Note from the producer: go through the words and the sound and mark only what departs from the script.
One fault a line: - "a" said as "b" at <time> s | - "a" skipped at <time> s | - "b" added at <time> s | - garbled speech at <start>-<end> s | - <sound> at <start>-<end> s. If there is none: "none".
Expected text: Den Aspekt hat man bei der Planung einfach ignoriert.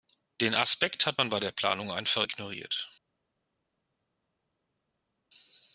none